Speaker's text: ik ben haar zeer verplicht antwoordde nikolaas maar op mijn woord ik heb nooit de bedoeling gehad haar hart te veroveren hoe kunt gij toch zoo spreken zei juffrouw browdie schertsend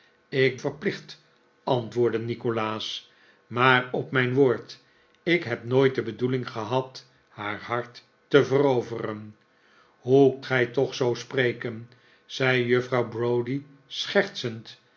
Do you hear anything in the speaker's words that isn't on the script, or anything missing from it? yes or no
yes